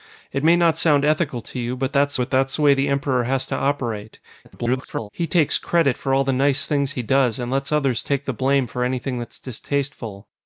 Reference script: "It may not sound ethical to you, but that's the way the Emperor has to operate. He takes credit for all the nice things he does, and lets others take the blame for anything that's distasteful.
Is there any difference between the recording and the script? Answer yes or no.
yes